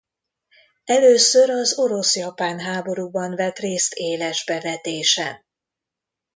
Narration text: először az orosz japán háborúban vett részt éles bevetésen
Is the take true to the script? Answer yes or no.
yes